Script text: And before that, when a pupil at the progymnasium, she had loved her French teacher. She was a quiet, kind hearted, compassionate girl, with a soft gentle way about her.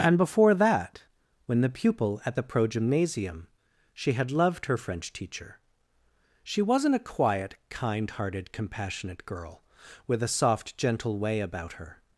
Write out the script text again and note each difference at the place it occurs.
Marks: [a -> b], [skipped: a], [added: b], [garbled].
And before that, when [a -> the] pupil at the progymnasium, she had loved her French teacher. She [was -> wasn't] a quiet, kind hearted, compassionate girl, with a soft gentle way about her.